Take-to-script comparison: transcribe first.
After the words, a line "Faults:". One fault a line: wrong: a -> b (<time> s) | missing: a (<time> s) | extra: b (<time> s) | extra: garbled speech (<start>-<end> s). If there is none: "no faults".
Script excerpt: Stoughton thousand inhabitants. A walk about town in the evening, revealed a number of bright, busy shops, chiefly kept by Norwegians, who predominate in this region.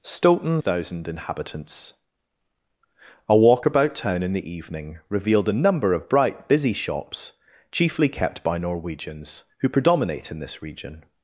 Stoughton thousand inhabitants. A walk about town in the evening, revealed a number of bright, busy shops, chiefly kept by Norwegians, who predominate in this region.
Faults:
no faults